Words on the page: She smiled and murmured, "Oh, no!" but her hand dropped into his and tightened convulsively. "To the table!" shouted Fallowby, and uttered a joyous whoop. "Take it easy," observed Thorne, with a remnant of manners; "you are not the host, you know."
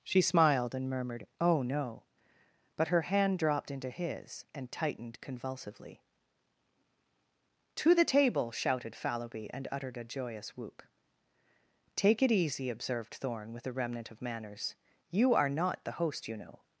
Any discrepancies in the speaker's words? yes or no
no